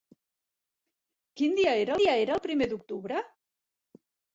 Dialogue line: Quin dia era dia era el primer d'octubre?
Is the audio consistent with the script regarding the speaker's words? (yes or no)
yes